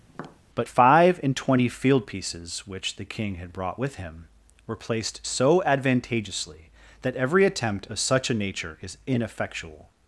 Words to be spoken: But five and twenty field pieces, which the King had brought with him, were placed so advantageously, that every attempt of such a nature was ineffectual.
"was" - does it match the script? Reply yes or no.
no